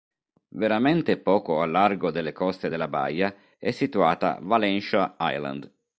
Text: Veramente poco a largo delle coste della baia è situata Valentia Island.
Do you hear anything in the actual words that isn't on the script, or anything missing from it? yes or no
no